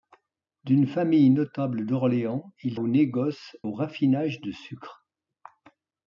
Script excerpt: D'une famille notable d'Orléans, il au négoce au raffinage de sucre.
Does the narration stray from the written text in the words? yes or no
no